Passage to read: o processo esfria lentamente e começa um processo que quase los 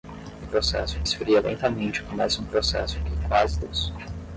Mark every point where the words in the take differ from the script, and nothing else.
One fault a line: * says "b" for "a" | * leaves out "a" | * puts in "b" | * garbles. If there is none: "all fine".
all fine